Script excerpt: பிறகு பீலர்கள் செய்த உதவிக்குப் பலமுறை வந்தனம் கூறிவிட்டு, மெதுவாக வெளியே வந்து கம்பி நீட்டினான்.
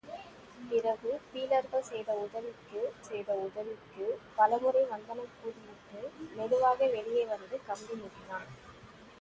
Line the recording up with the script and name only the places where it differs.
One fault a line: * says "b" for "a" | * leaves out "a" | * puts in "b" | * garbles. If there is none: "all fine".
* puts in "செய்த உதவிக்குப்"